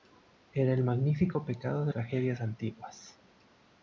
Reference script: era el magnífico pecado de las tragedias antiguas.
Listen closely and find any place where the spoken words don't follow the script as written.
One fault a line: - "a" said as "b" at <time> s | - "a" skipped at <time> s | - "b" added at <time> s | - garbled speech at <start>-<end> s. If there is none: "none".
- "las" skipped at 1.9 s